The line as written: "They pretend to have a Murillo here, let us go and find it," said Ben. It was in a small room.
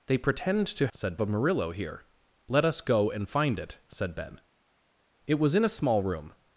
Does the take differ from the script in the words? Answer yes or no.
yes